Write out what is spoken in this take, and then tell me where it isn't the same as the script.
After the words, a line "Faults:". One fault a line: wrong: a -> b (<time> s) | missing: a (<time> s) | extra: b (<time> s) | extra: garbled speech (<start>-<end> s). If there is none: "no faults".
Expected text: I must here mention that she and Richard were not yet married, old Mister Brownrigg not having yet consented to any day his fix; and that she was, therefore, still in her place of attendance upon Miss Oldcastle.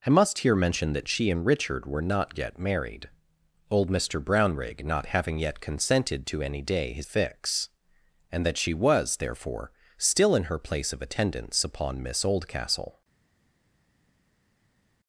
I must here mention that she and Richard were not yet married, old Mister Brownrigg not having yet consented to any day his fix; and that she was, therefore, still in her place of attendance upon Miss Oldcastle.
Faults:
no faults